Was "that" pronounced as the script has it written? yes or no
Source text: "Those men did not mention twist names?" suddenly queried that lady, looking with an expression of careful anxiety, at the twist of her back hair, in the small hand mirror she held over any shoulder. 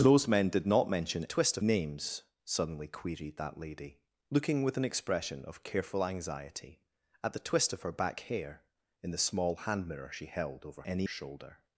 yes